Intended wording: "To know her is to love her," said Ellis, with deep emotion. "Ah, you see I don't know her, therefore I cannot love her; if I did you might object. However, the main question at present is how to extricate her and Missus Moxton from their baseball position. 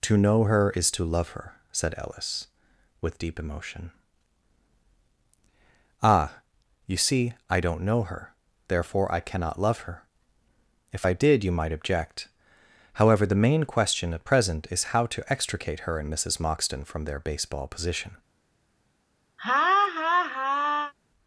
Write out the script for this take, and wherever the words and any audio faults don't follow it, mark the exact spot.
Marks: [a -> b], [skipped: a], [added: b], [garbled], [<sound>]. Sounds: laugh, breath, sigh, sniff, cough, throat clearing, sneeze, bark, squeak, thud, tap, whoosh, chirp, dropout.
"To know her is to love her," said Ellis, with deep emotion. "Ah, you see I don't know her, therefore I cannot love her; if I did you might object. However, the main question at present is how to extricate her and Missus Moxton from their baseball position. [laugh]